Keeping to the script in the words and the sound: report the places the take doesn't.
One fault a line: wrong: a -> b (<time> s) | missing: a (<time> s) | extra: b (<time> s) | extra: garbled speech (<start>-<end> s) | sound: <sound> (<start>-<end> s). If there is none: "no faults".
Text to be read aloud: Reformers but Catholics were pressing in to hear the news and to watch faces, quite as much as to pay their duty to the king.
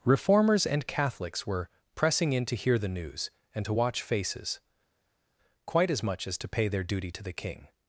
wrong: but -> and (0.7 s)